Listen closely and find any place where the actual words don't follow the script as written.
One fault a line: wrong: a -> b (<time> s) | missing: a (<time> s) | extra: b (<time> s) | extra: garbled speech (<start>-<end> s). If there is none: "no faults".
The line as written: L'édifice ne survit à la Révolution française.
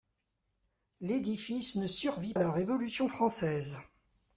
no faults